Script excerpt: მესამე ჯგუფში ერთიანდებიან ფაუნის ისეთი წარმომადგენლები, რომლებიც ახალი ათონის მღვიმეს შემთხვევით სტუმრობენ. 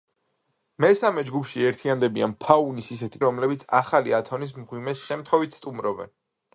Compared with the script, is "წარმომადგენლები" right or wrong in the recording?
wrong